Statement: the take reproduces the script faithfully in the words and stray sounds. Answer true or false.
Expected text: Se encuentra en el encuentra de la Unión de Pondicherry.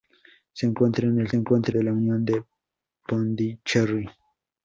true